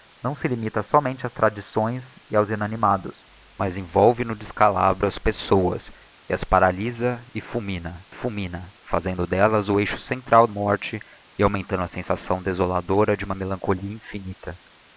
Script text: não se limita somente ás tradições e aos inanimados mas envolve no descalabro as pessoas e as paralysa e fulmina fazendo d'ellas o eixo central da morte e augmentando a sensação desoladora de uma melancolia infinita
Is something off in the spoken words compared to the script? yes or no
yes